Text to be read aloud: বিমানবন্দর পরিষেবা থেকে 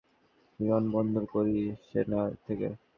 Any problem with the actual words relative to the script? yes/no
no